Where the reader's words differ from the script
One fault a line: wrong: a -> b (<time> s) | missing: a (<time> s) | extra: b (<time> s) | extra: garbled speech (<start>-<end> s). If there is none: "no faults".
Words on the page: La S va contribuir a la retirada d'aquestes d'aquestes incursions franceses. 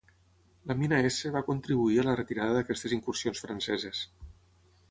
extra: mina (0.8 s)
missing: d'aquestes (2.9 s)